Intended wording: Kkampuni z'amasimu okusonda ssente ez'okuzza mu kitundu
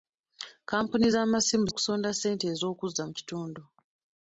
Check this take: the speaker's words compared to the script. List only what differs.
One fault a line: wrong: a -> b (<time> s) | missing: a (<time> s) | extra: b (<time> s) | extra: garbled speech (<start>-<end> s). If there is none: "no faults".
no faults